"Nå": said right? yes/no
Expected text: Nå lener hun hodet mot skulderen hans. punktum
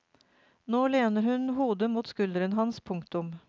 yes